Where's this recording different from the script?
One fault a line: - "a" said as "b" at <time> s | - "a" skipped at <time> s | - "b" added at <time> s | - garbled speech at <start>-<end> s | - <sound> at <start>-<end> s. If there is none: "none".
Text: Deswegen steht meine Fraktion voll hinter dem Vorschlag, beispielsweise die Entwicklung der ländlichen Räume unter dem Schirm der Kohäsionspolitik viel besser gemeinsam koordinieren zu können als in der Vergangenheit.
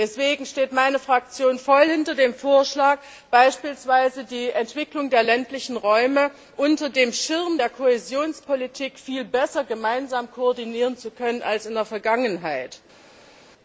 none